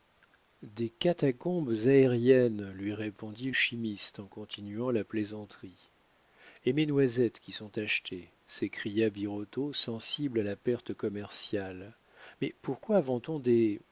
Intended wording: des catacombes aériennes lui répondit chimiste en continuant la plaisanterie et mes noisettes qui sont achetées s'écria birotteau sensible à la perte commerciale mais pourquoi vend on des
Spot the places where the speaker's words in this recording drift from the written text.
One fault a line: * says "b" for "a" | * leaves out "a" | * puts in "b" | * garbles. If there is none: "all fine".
all fine